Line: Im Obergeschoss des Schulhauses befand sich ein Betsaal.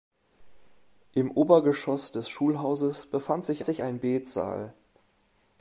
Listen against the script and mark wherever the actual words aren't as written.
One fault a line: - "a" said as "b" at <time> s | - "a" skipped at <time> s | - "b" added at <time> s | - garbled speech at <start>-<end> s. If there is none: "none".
- "sich" added at 3.6 s